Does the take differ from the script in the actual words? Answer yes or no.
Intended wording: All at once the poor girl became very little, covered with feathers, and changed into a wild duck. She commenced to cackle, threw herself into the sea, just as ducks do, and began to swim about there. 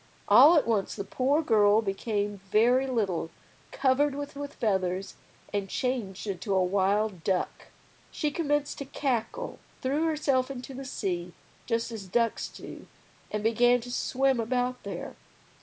yes